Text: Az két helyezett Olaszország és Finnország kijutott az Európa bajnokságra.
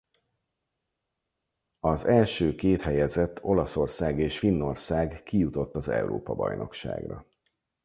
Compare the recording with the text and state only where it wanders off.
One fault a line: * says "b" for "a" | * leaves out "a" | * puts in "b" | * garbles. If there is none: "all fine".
* puts in "első"